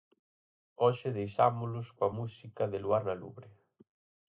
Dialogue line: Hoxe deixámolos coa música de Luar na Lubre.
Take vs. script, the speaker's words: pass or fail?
pass